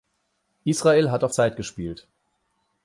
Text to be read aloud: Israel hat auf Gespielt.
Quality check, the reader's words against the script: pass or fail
fail